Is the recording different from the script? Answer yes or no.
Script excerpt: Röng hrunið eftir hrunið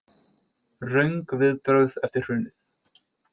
yes